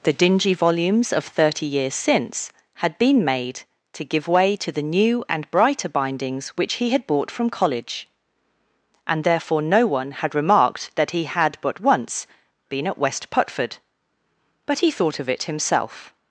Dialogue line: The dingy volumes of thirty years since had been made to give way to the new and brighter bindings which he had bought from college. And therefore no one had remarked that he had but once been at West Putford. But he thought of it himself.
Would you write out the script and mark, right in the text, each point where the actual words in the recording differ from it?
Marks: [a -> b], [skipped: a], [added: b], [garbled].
The dingy volumes of thirty years since had been made to give way to the new and brighter bindings which he had bought from college. And therefore no one had remarked that he had but once been at West Putford. But he thought of it himself.